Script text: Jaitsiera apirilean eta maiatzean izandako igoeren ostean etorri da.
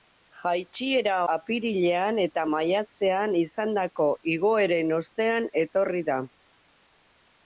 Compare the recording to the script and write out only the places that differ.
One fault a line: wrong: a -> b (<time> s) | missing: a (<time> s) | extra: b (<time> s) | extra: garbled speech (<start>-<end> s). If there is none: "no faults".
no faults